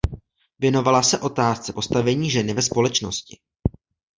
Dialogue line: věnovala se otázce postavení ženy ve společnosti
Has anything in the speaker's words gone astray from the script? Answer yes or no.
no